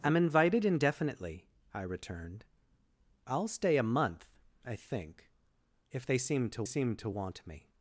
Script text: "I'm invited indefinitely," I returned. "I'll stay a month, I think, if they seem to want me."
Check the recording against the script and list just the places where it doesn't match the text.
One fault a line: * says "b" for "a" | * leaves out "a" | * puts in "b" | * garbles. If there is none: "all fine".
* puts in "seem to"